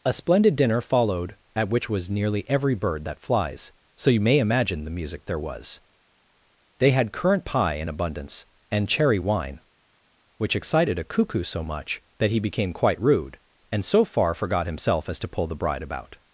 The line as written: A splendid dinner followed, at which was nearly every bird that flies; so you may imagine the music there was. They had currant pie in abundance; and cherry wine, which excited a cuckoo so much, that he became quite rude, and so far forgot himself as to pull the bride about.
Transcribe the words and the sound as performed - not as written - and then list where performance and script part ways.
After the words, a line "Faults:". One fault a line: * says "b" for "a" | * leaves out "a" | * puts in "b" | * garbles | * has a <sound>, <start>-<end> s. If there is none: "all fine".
A splendid dinner followed, at which was nearly every bird that flies; so you may imagine the music there was. They had currant pie in abundance; and cherry wine, which excited a cuckoo so much, that he became quite rude, and so far forgot himself as to pull the bride about.
Faults:
all fine